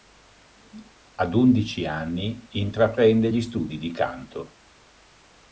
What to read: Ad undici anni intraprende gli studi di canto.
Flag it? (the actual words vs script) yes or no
no